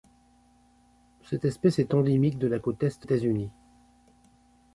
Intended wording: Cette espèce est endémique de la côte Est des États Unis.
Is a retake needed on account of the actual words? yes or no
yes